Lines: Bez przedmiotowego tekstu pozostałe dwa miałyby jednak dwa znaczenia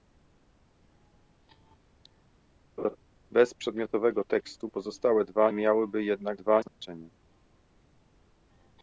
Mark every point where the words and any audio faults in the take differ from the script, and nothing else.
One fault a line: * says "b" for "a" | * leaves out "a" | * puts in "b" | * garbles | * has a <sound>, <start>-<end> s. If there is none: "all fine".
* has a laugh, 2.8-3.0 s
* has a dropout, 6.7-6.8 s